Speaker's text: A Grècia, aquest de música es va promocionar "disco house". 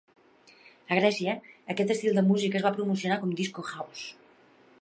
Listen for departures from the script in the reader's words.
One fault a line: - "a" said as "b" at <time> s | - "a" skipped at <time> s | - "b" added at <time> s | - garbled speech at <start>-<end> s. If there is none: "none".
- "estil" added at 2.0 s
- "com" added at 3.3 s